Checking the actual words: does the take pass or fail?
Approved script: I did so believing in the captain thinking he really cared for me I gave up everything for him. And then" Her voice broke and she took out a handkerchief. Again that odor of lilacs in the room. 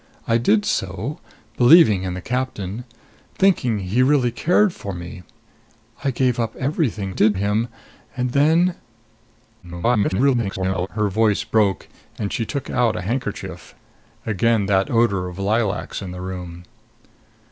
fail